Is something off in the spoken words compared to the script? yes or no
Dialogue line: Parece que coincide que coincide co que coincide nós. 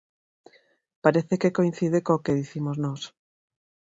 yes